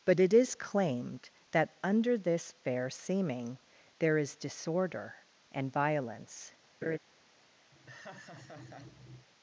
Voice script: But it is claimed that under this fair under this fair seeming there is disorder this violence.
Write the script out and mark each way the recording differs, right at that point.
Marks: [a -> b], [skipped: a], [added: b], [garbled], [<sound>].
But it is claimed that under this fair [skipped: under this fair] seeming there is disorder [this -> and] violence. [laugh] [laugh]